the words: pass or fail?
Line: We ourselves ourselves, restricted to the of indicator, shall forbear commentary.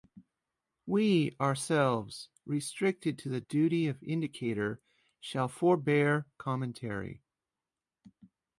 fail